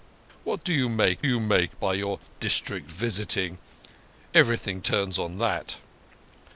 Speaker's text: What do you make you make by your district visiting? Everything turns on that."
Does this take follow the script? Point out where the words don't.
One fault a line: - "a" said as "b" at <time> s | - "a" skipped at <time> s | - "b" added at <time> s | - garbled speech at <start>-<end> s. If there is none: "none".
none